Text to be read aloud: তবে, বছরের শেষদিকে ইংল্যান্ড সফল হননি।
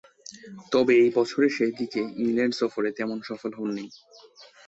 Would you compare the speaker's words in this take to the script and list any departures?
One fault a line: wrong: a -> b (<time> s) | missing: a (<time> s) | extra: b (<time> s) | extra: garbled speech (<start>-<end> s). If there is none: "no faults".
extra: ঐ (1.0 s)
extra: সফরে তেমন (2.5 s)